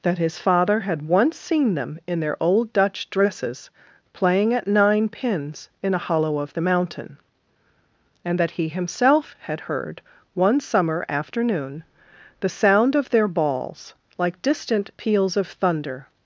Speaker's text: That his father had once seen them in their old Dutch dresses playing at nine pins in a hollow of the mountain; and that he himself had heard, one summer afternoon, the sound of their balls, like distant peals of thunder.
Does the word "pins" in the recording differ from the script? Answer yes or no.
no